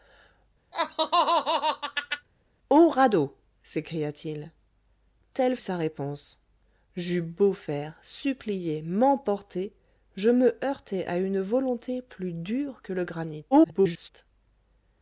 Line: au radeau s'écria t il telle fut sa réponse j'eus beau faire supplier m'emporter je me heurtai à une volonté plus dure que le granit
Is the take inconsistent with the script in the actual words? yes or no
yes